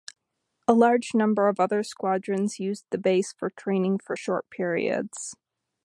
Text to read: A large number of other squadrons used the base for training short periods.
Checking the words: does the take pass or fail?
fail